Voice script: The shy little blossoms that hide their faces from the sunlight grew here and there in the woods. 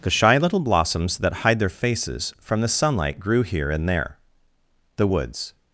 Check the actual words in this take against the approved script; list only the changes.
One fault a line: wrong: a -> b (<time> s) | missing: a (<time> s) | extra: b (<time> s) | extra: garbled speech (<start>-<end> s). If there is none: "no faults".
missing: in (4.2 s)